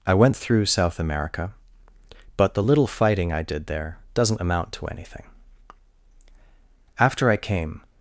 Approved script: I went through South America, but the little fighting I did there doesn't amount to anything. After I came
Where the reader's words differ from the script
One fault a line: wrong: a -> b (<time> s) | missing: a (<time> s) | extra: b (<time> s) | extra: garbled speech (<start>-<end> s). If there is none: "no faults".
no faults